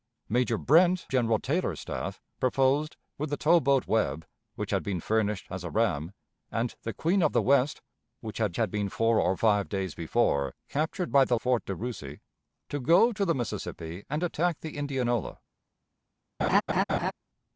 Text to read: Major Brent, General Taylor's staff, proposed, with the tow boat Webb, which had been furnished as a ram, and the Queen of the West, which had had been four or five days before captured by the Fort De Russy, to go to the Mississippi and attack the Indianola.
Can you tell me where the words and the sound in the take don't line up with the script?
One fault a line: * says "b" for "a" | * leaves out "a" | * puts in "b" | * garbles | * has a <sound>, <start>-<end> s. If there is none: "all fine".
* has a laugh, 16.4-17.1 s